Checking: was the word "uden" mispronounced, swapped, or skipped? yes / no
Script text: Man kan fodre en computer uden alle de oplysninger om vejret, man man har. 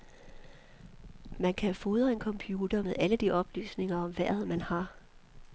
yes